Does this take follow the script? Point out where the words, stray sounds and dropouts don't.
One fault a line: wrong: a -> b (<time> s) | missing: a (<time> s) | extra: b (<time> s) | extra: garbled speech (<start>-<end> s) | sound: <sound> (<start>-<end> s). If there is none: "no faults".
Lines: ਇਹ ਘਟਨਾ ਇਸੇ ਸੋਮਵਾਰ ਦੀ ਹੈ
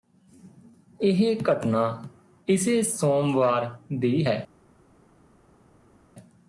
no faults